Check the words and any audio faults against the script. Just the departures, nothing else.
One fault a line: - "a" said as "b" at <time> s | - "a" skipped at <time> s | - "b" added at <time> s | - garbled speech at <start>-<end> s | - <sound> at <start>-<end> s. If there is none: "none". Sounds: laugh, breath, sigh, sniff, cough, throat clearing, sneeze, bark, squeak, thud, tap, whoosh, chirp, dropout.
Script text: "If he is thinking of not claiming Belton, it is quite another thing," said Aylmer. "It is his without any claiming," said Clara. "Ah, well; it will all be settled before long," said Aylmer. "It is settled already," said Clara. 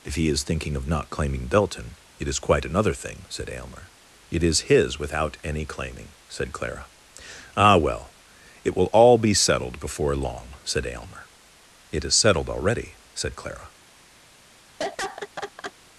- laugh at 14.8-15.7 s